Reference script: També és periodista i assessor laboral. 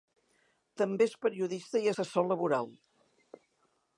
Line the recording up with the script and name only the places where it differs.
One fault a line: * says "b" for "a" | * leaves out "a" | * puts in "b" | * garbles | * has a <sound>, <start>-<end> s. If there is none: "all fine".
all fine